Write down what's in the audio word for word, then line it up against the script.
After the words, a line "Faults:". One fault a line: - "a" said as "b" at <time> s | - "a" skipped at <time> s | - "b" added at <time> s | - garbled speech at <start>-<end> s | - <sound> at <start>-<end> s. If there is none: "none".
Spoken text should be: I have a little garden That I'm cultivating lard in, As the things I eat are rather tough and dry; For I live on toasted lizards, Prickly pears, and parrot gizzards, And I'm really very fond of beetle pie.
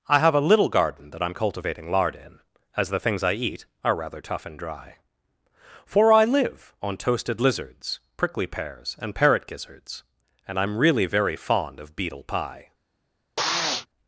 I have a little garden That I'm cultivating lard in, As the things I eat are rather tough and dry; For I live on toasted lizards, Prickly pears, and parrot gizzards, And I'm really very fond of beetle pie.
Faults:
- sniff at 13.4-13.9 s